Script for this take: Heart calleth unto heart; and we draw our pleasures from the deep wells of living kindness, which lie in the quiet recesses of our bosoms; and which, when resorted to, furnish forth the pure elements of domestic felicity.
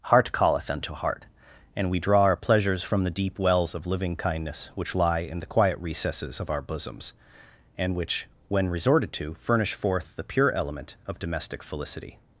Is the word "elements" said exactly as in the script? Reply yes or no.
no